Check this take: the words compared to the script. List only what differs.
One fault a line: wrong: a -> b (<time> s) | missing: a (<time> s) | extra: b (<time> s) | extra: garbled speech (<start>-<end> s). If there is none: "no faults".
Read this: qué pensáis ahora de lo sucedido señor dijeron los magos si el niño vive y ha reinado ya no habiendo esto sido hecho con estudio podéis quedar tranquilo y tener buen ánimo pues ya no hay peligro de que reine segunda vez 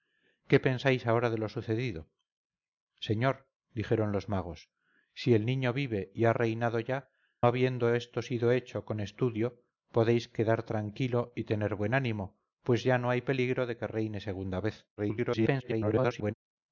missing: no (7.1 s)
extra: garbled speech (15.0-16.3 s)